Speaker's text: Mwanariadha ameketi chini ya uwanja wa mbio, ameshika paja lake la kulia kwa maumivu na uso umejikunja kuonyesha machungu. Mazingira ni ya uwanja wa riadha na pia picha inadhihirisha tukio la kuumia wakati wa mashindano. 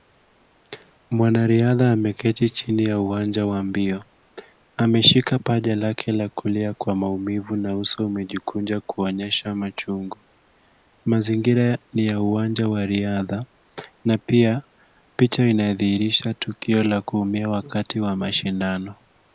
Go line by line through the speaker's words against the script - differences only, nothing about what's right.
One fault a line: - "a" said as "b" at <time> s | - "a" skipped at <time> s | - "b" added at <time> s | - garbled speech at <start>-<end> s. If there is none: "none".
none